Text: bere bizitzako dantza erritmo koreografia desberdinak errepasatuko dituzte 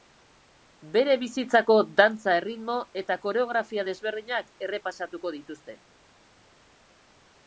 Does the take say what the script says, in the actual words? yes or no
no